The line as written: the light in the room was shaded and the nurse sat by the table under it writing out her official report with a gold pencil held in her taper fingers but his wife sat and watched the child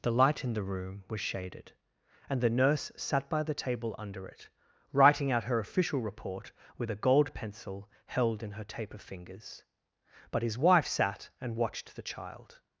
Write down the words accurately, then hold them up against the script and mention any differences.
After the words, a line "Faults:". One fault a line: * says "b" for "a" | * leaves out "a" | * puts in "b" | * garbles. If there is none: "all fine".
the light in the room was shaded and the nurse sat by the table under it writing out her official report with a gold pencil held in her taper fingers but his wife sat and watched the child
Faults:
all fine